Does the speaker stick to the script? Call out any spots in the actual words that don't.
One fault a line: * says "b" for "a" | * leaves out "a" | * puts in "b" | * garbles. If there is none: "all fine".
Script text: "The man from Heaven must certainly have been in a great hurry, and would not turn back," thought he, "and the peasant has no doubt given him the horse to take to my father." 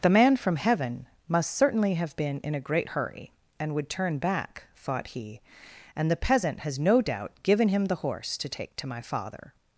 * leaves out "not"